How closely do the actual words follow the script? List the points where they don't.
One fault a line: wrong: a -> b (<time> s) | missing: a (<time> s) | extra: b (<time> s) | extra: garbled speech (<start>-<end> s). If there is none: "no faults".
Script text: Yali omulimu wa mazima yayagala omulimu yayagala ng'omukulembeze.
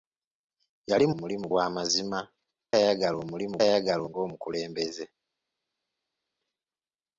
no faults